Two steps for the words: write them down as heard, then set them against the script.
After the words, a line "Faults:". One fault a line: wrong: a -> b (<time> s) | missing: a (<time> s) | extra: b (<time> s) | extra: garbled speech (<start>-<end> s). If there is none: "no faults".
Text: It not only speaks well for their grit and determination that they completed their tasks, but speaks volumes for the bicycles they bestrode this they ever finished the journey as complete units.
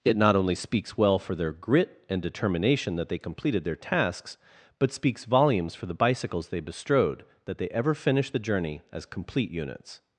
It not only speaks well for their grit and determination that they completed their tasks, but speaks volumes for the bicycles they bestrode that they ever finished the journey as complete units.
Faults:
wrong: this -> that (7.5 s)